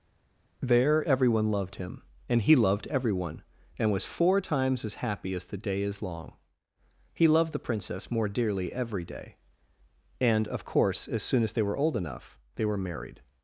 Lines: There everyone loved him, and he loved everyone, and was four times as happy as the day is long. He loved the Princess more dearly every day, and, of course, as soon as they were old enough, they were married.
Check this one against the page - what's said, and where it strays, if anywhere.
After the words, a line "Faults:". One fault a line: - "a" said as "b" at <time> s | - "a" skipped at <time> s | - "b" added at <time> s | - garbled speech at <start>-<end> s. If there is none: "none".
There everyone loved him, and he loved everyone, and was four times as happy as the day is long. He loved the Princess more dearly every day, and, of course, as soon as they were old enough, they were married.
Faults:
none